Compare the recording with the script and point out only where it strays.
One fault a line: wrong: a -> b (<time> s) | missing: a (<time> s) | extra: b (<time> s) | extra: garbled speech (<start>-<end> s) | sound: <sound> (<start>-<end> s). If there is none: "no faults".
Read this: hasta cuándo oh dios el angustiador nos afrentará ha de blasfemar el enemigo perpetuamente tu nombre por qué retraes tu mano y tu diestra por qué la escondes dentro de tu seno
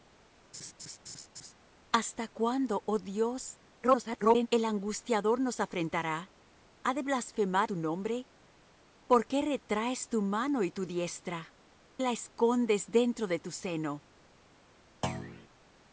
sound: laugh (0.5-1.5 s)
extra: garbled speech (3.8-4.5 s)
missing: el enemigo perpetuamente (7.7 s)
missing: por qué (11.5 s)
sound: thud (15.0-15.5 s)